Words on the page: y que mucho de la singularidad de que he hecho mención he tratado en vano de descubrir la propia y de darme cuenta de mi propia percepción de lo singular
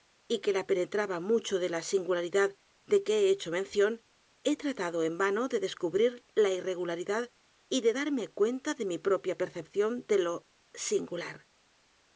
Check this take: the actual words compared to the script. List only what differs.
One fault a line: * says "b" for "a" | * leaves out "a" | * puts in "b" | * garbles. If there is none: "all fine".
* puts in "la penetraba"
* says "irregularidad" for "propia"